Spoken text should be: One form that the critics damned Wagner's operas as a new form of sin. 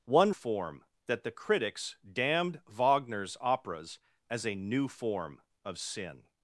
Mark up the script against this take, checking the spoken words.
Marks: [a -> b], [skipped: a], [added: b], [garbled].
One form that the critics damned Wagner's operas as a new form of sin.